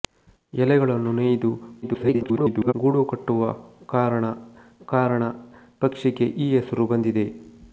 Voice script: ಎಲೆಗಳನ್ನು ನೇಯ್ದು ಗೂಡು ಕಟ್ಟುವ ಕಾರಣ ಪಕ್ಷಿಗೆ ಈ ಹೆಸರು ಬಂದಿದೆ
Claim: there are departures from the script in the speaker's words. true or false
true